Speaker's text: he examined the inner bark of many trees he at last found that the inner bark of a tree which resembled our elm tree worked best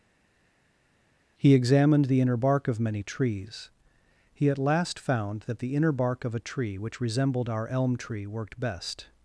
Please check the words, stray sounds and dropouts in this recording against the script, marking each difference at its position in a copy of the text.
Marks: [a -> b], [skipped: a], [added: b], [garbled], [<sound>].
he examined the inner bark of many trees he at last found that the inner bark of a tree which resembled our elm tree worked best